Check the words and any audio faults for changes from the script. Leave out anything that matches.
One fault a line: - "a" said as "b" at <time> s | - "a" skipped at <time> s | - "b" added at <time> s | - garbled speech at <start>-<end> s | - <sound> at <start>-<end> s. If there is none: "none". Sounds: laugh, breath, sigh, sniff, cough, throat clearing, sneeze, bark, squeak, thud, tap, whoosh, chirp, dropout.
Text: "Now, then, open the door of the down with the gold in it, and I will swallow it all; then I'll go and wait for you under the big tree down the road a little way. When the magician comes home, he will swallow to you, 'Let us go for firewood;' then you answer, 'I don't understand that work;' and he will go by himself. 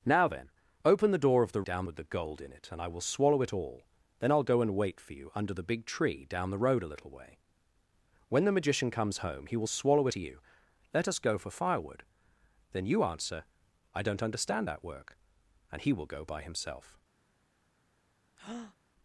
- breath at 18.4-18.8 s